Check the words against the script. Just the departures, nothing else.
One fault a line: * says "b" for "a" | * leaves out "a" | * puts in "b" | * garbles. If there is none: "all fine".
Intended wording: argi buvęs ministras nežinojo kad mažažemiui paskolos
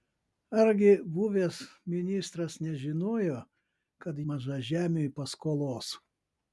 all fine